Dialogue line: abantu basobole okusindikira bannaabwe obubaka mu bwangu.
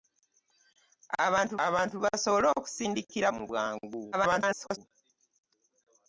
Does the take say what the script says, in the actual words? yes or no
no